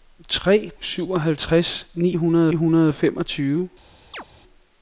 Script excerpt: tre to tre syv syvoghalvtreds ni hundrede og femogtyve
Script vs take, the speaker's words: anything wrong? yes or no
yes